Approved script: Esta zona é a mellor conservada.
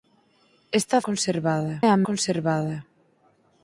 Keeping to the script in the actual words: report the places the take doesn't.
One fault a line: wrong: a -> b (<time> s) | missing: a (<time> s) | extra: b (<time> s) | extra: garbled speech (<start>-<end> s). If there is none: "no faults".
wrong: zona -> conservada (1.1 s)
missing: mellor (2.0 s)